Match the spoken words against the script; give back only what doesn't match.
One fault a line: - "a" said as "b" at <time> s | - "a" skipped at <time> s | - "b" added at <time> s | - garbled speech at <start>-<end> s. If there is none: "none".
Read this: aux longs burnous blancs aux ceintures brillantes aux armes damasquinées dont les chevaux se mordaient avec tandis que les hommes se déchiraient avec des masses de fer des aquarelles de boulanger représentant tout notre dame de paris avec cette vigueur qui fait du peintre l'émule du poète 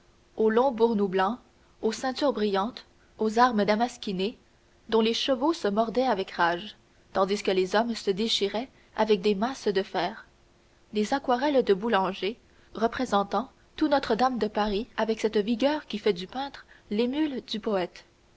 - "rage" added at 6.3 s